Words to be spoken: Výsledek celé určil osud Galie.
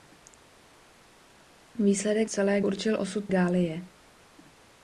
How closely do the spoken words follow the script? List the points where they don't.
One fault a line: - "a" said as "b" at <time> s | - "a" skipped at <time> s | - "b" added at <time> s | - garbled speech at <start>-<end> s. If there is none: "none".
none